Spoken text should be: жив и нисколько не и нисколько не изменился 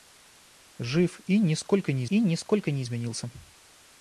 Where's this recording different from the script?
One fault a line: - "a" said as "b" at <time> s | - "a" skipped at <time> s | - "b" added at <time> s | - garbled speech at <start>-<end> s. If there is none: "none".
none